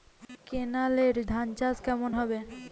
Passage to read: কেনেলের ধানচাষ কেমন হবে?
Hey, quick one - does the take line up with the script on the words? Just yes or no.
yes